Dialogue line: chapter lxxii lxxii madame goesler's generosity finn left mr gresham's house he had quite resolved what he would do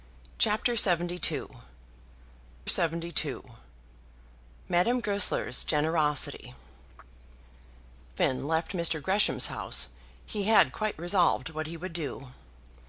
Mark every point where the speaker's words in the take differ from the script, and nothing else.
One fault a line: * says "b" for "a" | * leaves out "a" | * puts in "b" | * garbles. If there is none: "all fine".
all fine